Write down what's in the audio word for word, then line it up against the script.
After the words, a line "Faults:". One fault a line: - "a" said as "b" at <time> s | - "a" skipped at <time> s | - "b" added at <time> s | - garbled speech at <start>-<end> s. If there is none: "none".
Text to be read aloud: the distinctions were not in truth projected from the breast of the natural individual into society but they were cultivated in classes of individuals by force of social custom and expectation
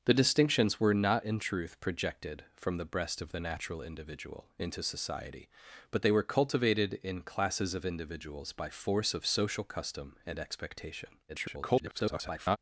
the distinctions were not in truth projected from the breast of the natural individual into society but they were cultivated in classes of individuals by force of social custom and expectation [garbled]
Faults:
- garbled speech at 11.3-12.6 s